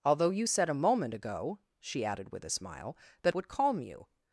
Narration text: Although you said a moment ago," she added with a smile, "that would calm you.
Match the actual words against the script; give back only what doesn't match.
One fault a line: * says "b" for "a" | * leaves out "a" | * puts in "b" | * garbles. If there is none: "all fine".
all fine